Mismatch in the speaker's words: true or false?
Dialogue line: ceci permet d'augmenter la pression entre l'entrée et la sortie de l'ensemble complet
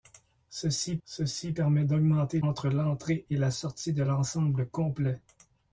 true